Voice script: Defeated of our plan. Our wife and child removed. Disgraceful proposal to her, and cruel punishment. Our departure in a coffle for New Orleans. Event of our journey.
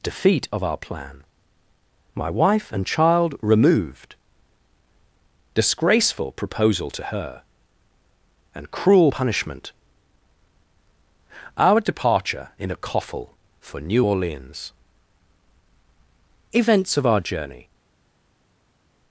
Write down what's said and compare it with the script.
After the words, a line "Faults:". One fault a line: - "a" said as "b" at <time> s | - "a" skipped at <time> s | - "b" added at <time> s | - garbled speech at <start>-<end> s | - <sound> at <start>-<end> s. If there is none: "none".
Defeat of our plan. My wife and child removed. Disgraceful proposal to her, and cruel punishment. Our departure in a coffle for New Orleans. Events of our journey.
Faults:
- "Defeated" said as "Defeat" at 0.0 s
- "Our" said as "My" at 2.1 s
- "Event" said as "Events" at 16.5 s